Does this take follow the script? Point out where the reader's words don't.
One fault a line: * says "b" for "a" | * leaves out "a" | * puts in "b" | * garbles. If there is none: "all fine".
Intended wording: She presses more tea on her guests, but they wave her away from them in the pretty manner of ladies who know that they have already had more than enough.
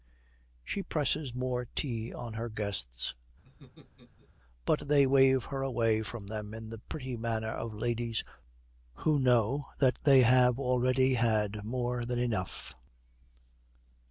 all fine